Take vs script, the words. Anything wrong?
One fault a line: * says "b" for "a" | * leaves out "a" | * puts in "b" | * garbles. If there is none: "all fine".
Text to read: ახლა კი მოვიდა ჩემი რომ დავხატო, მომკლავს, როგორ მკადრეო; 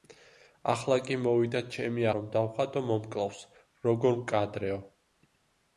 all fine